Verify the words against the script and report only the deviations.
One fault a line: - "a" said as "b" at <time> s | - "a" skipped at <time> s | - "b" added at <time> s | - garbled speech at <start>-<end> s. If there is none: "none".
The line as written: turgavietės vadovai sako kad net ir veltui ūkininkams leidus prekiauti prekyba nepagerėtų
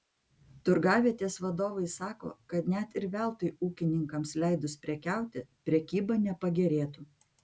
none